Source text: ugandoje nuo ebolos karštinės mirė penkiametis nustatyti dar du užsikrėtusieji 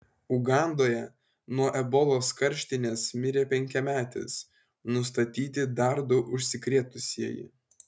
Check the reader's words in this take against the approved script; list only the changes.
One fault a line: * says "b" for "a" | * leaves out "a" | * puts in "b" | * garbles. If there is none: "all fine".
all fine